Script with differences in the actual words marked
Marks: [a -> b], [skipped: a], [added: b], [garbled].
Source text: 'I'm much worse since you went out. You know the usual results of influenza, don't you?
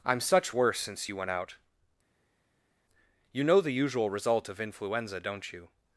'I'm [much -> such] worse since you went out. You know the usual [results -> result] of influenza, don't you?